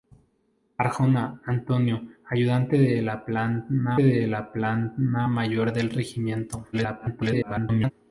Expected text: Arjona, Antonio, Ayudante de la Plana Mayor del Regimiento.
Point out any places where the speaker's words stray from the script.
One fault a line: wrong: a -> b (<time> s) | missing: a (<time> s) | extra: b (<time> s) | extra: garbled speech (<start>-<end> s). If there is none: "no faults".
extra: de la Plana (4.0 s)
extra: garbled speech (6.7-7.9 s)